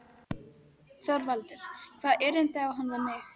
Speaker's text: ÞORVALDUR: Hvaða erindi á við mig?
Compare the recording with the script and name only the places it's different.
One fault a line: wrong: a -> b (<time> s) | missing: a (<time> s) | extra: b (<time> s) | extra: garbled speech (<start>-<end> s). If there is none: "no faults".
extra: hann (2.8 s)